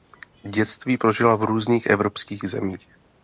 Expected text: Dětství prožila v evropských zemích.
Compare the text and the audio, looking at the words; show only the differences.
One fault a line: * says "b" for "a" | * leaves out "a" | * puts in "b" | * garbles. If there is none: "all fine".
* puts in "různých"